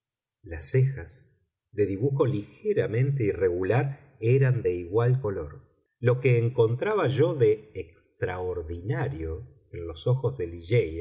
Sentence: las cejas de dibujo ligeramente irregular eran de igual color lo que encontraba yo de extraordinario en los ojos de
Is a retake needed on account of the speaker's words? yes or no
no